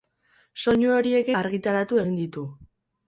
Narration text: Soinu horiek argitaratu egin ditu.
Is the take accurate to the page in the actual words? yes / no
yes